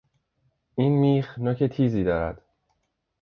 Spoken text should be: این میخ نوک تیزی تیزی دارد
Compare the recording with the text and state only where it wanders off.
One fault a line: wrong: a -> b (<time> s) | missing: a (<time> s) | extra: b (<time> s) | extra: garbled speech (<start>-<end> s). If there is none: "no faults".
missing: تیزی (2.0 s)